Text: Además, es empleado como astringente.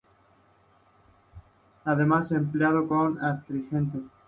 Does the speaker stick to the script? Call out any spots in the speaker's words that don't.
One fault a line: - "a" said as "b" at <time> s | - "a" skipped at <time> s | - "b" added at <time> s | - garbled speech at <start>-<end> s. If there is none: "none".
none